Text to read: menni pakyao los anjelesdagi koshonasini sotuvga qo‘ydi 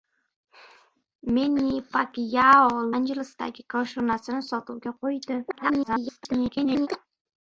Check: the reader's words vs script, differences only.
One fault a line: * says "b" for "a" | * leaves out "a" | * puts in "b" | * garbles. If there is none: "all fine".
* leaves out "los"
* garbles